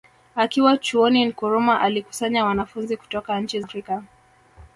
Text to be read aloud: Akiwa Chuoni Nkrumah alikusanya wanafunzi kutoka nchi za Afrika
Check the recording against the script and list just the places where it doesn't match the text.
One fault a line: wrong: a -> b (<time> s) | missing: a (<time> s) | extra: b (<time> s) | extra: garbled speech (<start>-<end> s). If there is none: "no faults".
missing: za (3.6 s)